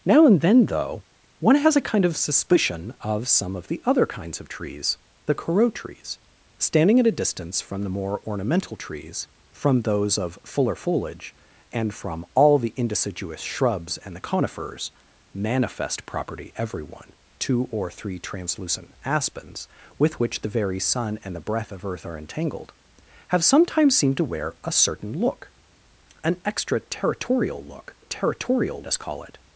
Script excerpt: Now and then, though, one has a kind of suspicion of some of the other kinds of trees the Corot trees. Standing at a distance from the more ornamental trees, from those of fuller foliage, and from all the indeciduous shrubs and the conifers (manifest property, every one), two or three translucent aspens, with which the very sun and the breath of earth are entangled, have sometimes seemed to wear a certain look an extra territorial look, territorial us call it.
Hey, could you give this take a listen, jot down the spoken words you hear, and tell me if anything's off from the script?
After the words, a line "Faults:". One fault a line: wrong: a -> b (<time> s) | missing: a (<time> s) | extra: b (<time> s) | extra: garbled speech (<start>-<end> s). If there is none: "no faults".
Now and then, though, one has a kind of suspicion of some of the other kinds of trees the Corot trees. Standing at a distance from the more ornamental trees, from those of fuller foliage, and from all the indeciduous shrubs and the conifers (manifest property, every one), two or three translucent aspens, with which the very sun and the breath of earth are entangled, have sometimes seemed to wear a certain look an extra territorial look, territorial us call it.
Faults:
no faults